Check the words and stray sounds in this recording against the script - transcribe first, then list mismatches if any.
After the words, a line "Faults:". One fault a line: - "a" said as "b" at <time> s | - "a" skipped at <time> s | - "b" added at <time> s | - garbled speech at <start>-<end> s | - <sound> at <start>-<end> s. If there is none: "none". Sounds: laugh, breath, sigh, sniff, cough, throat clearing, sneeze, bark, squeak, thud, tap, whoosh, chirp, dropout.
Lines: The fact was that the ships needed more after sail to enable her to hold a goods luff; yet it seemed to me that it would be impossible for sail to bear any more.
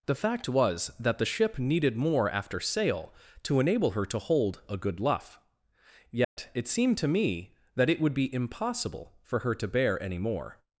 The fact was that the ship needed more after sail to enable her to hold a good luff; yet it seemed to me that it would be impossible for her to bear any more.
Faults:
- "ships" said as "ship" at 1.3 s
- "goods" said as "good" at 4.8 s
- dropout at 6.2-6.4 s
- "sail" said as "her" at 9.4 s